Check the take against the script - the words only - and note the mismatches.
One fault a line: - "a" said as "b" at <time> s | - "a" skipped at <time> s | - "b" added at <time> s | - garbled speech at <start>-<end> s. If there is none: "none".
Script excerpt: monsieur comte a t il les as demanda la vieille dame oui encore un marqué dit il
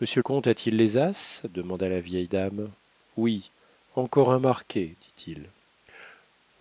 none